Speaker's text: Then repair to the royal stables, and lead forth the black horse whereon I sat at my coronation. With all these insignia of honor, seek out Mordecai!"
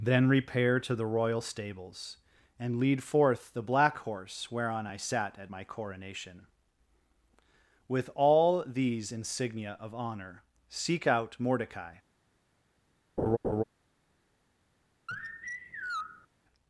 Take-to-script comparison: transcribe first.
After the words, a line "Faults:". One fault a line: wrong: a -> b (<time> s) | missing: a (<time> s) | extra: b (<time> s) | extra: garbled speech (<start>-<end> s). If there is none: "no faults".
Then repair to the royal stables, and lead forth the black horse whereon I sat at my coronation. With all these insignia of honor, seek out Mordecai!"
Faults:
no faults